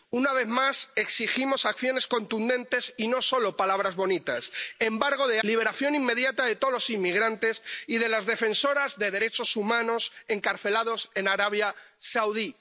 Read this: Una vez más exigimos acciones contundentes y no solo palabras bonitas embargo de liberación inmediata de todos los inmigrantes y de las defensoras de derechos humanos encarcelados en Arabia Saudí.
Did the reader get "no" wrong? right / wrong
right